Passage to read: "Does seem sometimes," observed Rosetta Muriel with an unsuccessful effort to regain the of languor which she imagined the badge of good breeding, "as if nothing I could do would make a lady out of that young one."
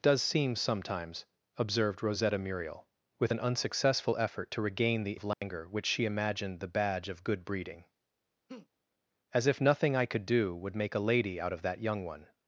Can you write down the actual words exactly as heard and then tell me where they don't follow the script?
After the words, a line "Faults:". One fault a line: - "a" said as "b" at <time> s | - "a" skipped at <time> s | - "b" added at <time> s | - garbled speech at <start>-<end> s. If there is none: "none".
"Does seem sometimes," observed Rosetta Muriel with an unsuccessful effort to regain the of languor which she imagined the badge of good breeding, "as if nothing I could do would make a lady out of that young one."
Faults:
none